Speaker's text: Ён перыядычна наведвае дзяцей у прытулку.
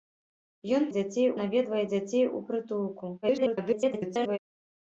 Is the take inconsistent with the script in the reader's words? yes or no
yes